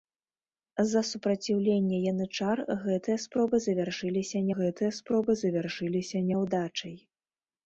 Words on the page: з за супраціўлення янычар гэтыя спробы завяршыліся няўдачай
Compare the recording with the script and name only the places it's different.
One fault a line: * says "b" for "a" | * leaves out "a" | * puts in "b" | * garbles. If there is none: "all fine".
* puts in "гэтыя спробы завяршыліся"